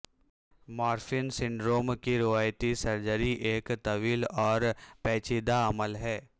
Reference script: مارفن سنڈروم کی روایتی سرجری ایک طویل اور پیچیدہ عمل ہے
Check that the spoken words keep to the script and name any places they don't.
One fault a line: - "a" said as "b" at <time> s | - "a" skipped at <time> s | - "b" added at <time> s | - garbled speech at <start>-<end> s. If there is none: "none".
none